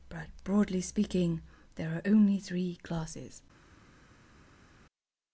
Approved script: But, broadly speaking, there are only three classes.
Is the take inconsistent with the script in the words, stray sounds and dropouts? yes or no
no